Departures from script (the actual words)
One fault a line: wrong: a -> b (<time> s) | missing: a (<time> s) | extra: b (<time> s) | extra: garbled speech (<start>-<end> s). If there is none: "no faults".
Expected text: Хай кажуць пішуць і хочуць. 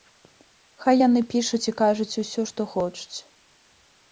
wrong: кажуць -> яны (1.1 s)
extra: кажуць усё што (1.8 s)